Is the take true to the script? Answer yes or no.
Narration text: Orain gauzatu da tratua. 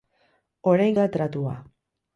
no